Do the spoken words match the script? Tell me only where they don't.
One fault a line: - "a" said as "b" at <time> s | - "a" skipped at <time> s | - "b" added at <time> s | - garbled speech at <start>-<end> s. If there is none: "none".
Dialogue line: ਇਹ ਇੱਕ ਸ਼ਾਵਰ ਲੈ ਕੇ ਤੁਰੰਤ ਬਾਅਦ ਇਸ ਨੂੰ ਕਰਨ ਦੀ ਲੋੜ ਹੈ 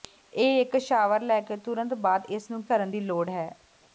none